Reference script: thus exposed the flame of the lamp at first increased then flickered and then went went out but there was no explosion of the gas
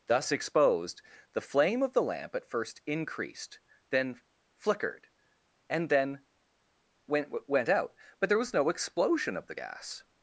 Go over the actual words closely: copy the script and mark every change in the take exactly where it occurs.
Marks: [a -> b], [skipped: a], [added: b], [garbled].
thus exposed the flame of the lamp at first increased then flickered and then went went out but there was no explosion of the gas